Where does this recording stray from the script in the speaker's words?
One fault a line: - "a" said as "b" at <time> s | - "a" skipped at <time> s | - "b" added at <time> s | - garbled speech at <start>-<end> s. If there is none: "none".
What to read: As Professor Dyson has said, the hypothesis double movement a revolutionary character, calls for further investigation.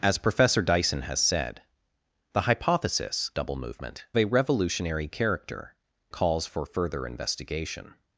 none